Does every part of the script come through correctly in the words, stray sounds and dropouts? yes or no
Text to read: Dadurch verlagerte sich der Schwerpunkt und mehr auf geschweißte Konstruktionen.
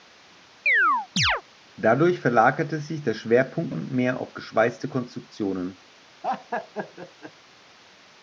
no